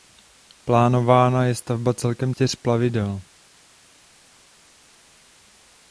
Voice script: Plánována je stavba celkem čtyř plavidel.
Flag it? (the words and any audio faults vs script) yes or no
no